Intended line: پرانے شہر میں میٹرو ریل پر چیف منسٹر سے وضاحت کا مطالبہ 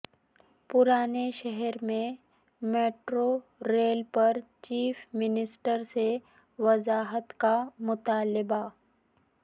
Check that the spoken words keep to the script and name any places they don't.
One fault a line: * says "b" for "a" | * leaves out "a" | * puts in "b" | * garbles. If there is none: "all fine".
all fine